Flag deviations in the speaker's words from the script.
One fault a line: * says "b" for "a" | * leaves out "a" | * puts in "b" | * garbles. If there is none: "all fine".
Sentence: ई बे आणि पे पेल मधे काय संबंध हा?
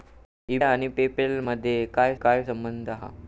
* leaves out "बे"
* puts in "काय"